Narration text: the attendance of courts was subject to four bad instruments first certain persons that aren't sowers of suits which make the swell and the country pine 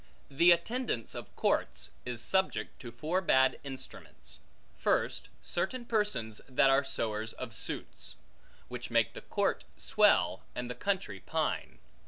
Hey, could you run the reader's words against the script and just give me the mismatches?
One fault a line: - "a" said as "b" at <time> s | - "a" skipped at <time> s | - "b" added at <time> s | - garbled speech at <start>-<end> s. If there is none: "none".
- "was" said as "is" at 2.1 s
- "aren't" said as "are" at 6.7 s
- "court" added at 9.2 s